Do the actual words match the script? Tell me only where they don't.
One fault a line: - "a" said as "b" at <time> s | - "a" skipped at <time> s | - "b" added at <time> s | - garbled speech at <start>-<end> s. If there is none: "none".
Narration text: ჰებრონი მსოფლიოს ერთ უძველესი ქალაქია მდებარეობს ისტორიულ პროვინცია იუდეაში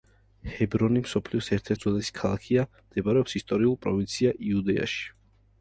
none